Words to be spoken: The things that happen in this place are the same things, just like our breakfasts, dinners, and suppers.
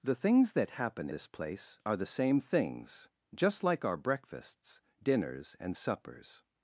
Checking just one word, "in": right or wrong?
wrong